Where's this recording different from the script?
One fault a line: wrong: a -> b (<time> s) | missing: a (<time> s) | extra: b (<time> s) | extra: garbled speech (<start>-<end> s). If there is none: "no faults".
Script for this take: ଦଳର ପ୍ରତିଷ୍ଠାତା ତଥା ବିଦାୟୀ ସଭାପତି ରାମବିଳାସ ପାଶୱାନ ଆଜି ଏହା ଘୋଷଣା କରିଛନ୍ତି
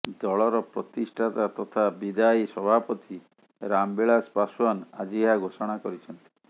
no faults